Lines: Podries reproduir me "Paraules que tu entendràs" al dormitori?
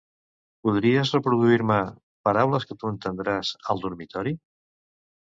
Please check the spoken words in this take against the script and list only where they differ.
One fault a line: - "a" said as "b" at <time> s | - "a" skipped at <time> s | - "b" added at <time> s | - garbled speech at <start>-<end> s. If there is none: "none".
none